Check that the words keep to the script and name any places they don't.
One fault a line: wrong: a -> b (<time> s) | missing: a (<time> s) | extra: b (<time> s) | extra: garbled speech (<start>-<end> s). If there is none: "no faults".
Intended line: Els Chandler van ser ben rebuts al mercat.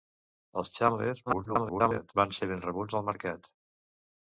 extra: garbled speech (1.3-2.1 s)